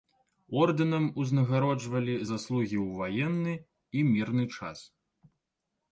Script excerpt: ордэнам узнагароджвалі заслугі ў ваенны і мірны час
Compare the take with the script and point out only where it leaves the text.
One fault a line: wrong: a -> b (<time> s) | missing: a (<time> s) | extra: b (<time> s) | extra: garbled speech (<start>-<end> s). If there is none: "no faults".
no faults